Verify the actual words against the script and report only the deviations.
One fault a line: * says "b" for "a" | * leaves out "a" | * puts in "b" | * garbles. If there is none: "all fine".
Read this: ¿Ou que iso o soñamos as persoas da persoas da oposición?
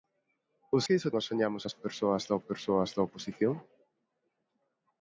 all fine